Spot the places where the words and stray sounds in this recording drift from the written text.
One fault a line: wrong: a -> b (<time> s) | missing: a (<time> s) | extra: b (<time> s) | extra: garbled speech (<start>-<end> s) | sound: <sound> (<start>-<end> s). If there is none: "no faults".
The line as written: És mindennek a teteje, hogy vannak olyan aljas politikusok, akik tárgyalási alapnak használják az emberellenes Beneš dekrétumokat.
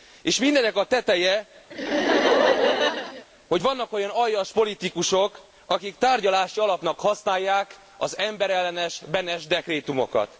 sound: laugh (1.7-3.3 s)